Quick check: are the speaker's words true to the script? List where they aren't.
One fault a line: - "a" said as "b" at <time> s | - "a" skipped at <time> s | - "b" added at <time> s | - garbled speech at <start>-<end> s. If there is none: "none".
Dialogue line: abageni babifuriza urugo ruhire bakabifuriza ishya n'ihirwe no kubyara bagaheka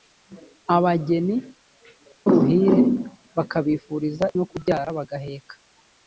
- "babifuriza urugo" skipped at 1.4 s
- "ishya n'ihirwe" skipped at 4.3 s